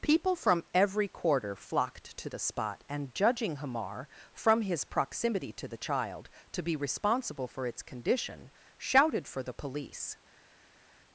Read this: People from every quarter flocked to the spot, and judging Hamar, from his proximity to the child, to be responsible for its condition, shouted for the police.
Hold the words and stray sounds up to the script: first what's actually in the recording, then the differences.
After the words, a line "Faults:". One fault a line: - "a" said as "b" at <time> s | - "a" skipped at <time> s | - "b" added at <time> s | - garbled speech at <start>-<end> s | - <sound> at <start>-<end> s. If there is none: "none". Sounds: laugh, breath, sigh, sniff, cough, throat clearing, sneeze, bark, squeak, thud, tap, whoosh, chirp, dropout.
People from every quarter flocked to the spot, and judging Hamar, from his proximity to the child, to be responsible for its condition, shouted for the police.
Faults:
none